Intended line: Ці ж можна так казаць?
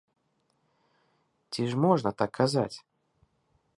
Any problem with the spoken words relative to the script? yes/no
no